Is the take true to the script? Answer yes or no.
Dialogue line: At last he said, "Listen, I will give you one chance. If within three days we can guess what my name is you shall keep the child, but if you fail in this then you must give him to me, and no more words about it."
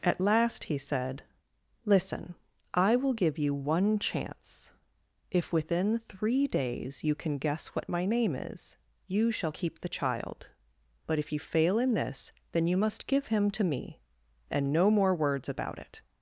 no